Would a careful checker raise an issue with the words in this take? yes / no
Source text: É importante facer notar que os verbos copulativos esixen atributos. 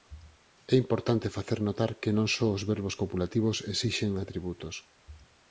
yes